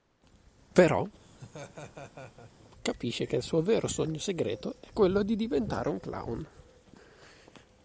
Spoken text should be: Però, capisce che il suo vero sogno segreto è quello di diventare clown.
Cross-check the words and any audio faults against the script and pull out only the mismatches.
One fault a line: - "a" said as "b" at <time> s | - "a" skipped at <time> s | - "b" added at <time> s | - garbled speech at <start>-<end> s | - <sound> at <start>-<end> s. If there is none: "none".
- laugh at 1.2-2.7 s
- "un" added at 5.9 s